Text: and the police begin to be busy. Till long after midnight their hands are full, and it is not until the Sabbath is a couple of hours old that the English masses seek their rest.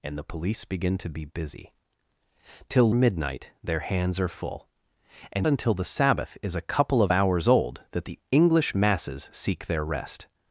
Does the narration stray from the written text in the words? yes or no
yes